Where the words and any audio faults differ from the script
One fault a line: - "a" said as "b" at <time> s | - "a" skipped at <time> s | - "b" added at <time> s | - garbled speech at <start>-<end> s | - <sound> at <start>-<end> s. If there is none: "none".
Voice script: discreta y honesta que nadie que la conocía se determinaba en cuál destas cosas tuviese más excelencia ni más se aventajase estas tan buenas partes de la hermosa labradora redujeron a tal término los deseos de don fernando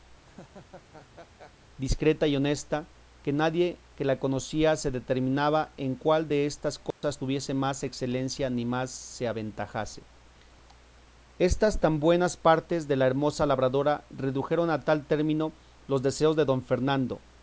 - laugh at 0.2-1.5 s
- dropout at 6.9-7.0 s